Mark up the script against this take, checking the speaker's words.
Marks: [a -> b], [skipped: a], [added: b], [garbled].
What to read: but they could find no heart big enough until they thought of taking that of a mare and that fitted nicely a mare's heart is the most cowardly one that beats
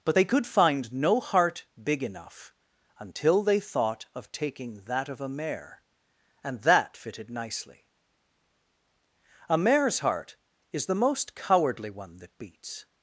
but they could find no heart big enough until they thought of taking that of a mare and that fitted nicely a mare's heart is the most cowardly one that beats